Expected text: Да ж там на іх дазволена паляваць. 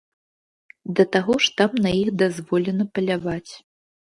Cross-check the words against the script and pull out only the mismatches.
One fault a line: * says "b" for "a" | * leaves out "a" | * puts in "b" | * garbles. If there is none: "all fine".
* puts in "таго"